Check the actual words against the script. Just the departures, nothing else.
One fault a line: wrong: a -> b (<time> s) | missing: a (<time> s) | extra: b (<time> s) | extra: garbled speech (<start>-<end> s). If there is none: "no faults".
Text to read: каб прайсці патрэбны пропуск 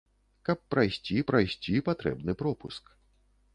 extra: прайсці (1.3 s)